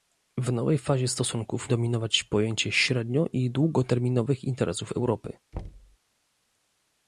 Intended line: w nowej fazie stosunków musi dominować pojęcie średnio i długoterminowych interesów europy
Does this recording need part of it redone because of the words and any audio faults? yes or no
yes